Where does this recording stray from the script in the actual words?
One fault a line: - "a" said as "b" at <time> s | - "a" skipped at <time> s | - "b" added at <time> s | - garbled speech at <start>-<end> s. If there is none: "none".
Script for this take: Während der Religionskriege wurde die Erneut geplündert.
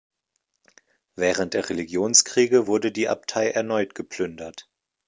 - "Abtei" added at 3.1 s